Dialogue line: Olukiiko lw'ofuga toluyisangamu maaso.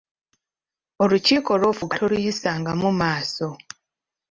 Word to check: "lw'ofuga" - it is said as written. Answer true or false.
true